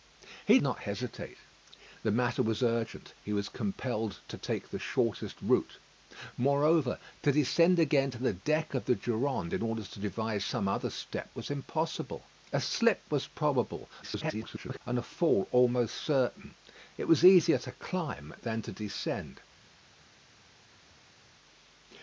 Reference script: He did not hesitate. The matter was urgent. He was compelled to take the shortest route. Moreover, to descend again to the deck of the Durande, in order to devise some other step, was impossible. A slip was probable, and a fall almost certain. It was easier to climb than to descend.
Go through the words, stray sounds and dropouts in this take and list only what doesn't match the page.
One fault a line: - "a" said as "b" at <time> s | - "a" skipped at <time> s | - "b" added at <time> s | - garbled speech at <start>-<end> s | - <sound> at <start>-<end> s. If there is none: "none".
- "did" skipped at 0.6 s
- garbled speech at 14.0-14.8 s